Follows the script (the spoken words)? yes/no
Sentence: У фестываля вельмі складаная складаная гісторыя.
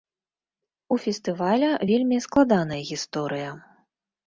no